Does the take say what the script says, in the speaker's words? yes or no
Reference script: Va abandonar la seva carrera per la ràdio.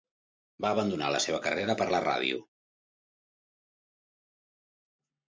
yes